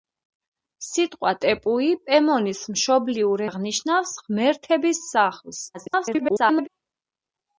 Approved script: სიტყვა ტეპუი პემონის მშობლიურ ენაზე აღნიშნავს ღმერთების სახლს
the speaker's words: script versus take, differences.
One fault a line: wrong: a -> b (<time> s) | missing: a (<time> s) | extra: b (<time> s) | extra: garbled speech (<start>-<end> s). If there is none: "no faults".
missing: ენაზე (3.5 s)
extra: garbled speech (5.7-6.7 s)